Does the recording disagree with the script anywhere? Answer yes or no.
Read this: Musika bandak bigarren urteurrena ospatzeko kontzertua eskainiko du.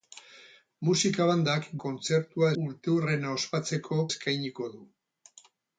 yes